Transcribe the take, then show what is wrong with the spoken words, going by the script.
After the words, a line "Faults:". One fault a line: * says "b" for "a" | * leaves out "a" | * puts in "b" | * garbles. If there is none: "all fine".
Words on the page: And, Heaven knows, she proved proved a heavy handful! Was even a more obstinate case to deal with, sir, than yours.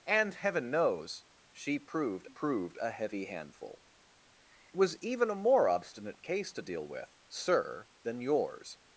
And, Heaven knows, she proved proved a heavy handful! Was even a more obstinate case to deal with, sir, than yours.
Faults:
all fine